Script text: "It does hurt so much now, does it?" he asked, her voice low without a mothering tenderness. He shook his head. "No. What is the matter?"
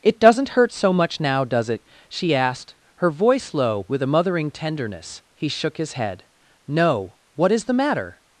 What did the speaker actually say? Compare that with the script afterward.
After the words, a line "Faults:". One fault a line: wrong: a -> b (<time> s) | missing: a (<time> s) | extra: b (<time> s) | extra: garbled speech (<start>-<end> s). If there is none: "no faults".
"It doesn't hurt so much now, does it?" she asked, her voice low with a mothering tenderness. He shook his head. "No. What is the matter?"
Faults:
wrong: does -> doesn't (0.2 s)
wrong: he -> she (2.1 s)
wrong: without -> with (3.9 s)